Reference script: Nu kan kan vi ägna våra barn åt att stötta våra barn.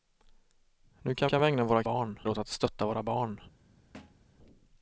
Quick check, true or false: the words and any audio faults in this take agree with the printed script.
false